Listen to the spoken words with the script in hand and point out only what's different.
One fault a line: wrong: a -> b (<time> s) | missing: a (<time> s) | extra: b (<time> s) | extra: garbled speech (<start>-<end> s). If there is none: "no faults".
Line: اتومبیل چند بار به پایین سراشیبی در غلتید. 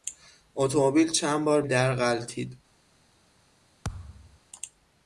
missing: به پایین سراشیبی (1.6 s)